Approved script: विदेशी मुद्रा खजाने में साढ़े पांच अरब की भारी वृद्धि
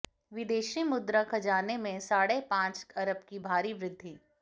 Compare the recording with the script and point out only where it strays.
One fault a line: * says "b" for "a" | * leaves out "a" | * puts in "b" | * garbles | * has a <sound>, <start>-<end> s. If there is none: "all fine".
all fine